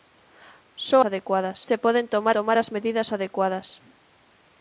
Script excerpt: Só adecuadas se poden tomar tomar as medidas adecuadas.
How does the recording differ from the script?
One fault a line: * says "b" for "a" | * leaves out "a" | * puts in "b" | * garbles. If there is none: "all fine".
all fine